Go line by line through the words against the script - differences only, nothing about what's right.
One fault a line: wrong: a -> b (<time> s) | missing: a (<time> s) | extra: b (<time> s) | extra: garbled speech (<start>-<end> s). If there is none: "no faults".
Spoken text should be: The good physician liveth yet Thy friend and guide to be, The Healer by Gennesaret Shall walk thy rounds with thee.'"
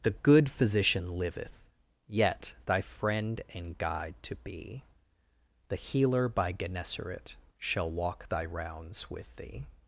no faults